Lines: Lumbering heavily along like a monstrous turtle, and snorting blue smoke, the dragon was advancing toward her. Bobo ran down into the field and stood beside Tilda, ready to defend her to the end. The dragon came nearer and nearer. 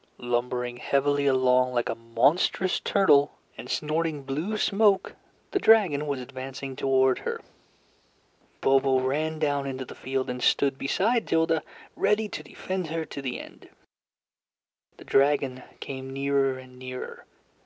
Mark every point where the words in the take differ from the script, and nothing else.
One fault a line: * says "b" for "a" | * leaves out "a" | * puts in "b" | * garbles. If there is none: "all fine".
all fine